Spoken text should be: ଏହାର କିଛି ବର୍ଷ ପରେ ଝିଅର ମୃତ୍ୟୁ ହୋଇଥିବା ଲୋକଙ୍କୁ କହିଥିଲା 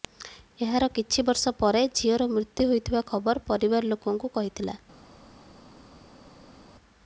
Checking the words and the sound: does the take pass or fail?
fail